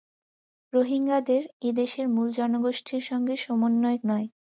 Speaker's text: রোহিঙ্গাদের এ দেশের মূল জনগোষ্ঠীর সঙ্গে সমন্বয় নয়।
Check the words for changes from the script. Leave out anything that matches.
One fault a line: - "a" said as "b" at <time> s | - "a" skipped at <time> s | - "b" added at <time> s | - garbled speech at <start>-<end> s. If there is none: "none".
none